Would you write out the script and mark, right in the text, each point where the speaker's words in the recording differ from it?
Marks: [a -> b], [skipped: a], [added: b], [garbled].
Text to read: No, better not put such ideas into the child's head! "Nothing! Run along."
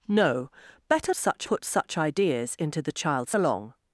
No, better [not -> such] put such ideas into the child's [skipped: head! "Nothing! Run] along."